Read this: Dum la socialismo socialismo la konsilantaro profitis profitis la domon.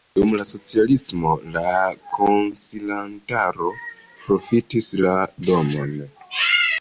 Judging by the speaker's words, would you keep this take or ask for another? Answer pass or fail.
fail